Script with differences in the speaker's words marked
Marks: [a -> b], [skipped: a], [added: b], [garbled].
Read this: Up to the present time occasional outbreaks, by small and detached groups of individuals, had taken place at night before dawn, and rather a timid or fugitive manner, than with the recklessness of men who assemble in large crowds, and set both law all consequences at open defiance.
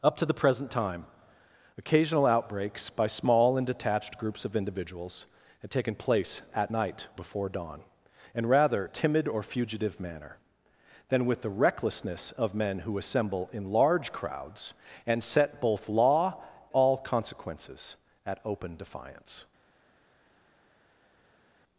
Up to the present time occasional outbreaks, by small and detached groups of individuals, had taken place at night before dawn, and rather a timid or fugitive manner, than with the recklessness of men who assemble in large crowds, and set both law all consequences at open defiance.